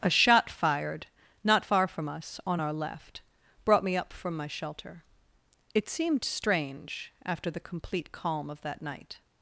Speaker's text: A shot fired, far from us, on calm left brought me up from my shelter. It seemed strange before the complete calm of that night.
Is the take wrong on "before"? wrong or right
wrong